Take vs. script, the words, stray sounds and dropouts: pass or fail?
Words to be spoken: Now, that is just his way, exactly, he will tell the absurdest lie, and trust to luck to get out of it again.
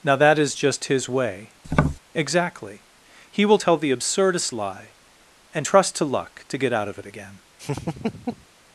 fail